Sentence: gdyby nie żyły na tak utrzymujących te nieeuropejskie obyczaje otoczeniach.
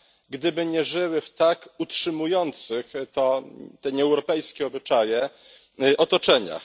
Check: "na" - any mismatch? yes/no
yes